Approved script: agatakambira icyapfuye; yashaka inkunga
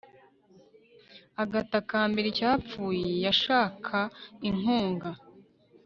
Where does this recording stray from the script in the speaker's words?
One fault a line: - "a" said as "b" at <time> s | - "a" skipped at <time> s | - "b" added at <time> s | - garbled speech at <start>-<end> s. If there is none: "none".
none